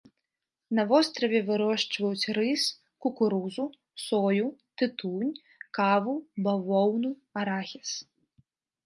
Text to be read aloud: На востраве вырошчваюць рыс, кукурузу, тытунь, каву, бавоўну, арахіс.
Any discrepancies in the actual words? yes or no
yes